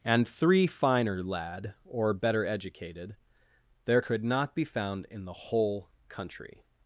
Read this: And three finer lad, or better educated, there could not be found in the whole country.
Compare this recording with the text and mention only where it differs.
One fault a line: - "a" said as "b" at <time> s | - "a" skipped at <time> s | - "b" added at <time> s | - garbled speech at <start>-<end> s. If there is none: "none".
none